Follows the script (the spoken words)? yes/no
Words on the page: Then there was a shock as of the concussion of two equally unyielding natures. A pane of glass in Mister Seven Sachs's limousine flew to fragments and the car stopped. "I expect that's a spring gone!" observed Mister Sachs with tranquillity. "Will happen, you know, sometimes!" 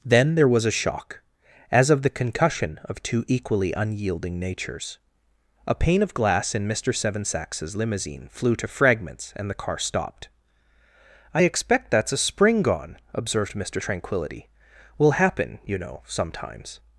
no